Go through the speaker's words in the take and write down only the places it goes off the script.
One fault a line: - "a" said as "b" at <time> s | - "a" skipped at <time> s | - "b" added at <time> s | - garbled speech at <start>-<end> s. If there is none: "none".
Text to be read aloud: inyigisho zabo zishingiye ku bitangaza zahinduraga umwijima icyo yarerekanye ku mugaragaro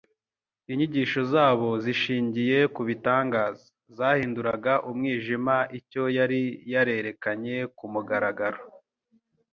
- "yari" added at 6.2 s